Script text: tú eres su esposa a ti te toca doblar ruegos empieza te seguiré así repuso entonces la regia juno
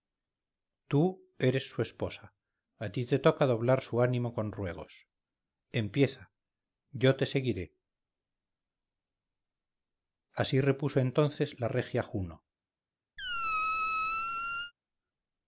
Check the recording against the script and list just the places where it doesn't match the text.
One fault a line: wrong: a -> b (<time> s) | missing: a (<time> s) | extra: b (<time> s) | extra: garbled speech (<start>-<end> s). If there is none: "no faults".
extra: su ánimo con (3.8 s)
extra: yo (6.9 s)